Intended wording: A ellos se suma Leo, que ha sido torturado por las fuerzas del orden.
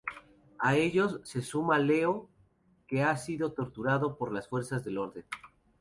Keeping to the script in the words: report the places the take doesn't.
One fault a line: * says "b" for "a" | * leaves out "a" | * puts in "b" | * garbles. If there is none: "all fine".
all fine